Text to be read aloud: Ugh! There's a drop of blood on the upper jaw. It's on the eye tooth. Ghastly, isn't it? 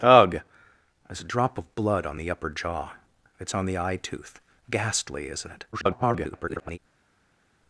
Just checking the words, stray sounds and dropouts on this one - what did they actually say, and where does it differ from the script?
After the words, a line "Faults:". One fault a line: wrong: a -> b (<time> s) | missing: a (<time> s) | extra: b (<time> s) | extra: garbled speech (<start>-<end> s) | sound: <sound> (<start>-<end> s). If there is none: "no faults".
Ugh! There's a drop of blood on the upper jaw. It's on the eye tooth. Ghastly, isn't it? [garbled]
Faults:
extra: garbled speech (5.7-6.8 s)